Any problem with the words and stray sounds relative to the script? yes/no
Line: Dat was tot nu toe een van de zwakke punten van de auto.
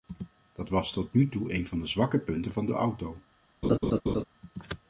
yes